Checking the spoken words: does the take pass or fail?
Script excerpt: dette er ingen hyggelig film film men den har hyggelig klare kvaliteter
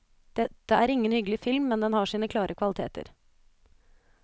fail